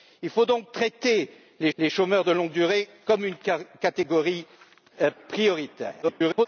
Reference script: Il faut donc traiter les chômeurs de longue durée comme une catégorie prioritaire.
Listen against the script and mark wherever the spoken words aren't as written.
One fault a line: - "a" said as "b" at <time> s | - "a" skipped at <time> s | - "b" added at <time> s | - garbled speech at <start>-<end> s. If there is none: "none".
- "les" added at 1.8 s
- garbled speech at 6.0-6.5 s